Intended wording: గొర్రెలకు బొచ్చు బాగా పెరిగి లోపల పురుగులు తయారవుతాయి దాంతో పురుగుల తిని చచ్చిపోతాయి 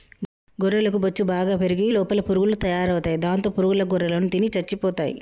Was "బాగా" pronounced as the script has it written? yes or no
yes